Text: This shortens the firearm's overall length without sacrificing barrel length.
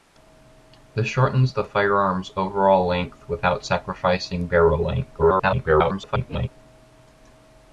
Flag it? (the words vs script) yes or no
yes